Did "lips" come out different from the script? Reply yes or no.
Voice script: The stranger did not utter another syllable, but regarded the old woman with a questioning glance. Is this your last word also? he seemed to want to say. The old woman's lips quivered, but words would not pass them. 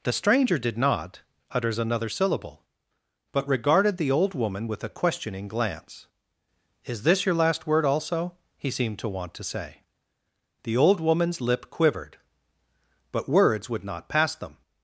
yes